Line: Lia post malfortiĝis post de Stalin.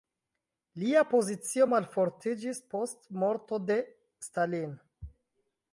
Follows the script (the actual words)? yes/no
no